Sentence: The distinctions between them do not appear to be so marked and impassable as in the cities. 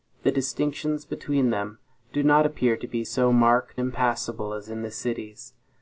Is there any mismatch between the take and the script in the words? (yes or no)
yes